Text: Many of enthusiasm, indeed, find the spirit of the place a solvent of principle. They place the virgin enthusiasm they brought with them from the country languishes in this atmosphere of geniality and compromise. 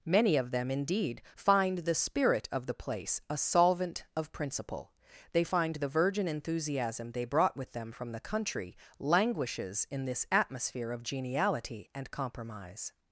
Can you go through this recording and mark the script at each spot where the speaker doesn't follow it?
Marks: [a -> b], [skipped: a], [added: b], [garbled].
Many of [enthusiasm, -> them] indeed, find the spirit of the place a solvent of principle. They [place -> find] the virgin enthusiasm they brought with them from the country languishes in this atmosphere of geniality and compromise.